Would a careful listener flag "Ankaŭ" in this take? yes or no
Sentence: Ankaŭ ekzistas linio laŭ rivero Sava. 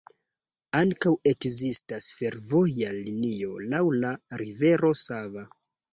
no